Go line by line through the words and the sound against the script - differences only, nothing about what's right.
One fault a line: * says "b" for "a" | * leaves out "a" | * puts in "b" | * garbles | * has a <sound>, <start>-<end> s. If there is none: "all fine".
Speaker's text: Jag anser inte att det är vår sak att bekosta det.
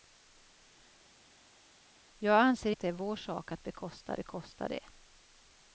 * leaves out "inte"
* puts in "bekosta"